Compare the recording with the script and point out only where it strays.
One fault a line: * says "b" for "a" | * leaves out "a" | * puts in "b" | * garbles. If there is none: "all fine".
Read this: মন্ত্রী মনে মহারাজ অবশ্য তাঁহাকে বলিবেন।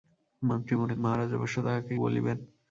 all fine